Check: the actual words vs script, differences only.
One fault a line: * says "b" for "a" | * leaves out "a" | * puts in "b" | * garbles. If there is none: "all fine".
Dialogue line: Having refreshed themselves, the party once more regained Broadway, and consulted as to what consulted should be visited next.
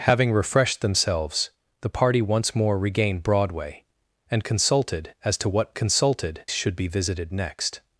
all fine